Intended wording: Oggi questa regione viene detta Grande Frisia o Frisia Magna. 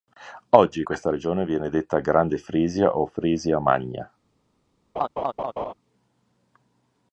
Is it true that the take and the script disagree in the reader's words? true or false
false